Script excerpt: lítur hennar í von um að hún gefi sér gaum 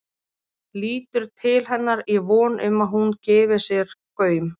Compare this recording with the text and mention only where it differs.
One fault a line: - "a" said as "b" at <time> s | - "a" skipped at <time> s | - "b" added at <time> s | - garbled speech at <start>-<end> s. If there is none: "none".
- "til" added at 1.4 s